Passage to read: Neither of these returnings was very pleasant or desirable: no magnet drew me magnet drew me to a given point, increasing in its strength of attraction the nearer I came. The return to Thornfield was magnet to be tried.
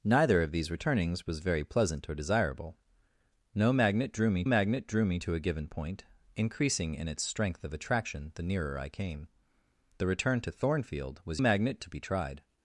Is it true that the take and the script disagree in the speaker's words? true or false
false